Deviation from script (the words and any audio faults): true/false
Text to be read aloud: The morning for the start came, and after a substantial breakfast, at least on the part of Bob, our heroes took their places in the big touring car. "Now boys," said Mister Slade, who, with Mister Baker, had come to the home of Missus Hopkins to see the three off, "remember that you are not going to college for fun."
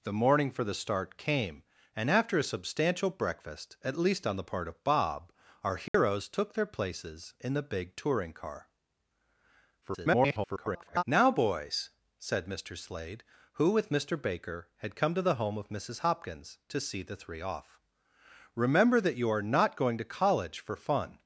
true